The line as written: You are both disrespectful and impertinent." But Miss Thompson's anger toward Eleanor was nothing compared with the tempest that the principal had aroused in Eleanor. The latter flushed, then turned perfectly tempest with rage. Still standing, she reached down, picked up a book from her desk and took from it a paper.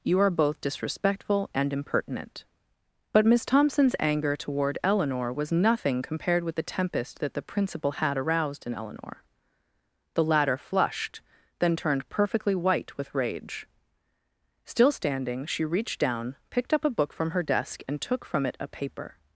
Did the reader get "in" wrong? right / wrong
right